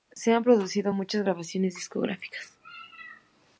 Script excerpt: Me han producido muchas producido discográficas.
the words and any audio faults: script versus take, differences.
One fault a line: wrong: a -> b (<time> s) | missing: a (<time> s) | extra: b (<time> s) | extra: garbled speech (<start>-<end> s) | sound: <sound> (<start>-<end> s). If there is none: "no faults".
wrong: Me -> Se (0.1 s)
wrong: producido -> grabaciones (1.2 s)